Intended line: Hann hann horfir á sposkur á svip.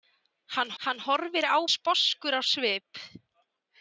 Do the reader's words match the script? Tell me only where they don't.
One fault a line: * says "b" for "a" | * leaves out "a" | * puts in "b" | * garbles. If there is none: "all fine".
all fine